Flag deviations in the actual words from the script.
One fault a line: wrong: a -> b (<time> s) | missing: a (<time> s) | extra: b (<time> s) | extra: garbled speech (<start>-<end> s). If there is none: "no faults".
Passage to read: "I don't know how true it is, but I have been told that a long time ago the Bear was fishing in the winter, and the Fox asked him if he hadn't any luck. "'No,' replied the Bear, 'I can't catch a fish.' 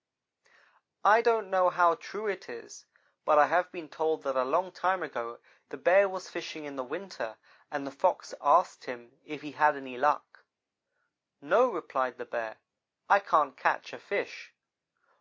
wrong: hadn't -> had (9.5 s)